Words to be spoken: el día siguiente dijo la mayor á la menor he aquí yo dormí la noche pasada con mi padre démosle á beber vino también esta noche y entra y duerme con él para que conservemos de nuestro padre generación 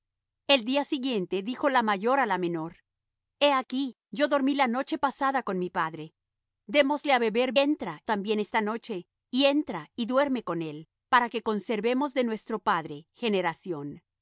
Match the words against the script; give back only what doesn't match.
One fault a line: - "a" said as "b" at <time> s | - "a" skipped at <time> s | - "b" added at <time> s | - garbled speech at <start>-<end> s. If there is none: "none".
- "vino" said as "entra" at 7.6 s